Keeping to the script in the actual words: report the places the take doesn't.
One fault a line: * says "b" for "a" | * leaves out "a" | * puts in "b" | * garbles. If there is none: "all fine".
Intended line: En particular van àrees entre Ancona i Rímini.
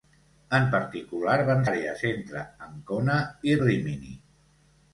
all fine